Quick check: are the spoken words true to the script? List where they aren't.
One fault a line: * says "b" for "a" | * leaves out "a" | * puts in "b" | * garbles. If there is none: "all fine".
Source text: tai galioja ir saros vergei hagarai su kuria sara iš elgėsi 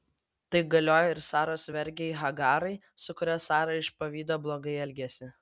* puts in "pavydo blogai"